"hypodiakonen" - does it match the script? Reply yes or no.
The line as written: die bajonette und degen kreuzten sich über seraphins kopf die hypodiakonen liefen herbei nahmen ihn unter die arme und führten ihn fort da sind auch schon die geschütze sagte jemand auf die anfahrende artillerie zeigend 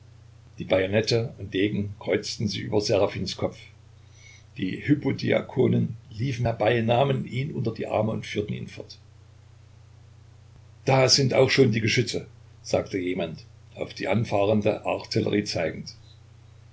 yes